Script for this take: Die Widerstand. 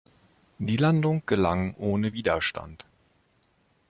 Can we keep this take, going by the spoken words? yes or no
no